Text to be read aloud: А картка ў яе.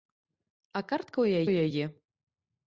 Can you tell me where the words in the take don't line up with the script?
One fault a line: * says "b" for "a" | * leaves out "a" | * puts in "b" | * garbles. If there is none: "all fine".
* puts in "ў"